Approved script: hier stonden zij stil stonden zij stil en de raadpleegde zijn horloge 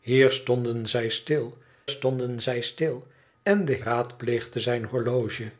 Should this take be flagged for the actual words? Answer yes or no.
no